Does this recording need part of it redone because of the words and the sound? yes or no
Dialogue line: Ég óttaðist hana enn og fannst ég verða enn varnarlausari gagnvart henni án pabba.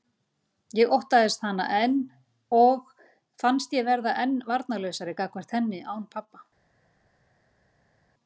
no